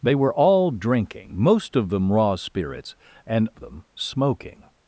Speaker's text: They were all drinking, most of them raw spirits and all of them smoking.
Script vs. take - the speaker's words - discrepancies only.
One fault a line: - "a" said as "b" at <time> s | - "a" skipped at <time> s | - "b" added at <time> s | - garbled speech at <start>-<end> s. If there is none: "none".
- "all of" skipped at 3.5 s